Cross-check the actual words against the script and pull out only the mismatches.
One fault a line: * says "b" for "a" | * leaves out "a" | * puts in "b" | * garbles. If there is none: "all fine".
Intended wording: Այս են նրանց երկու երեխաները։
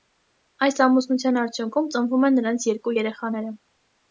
* puts in "ամուսնության արդյունքում ծնվում"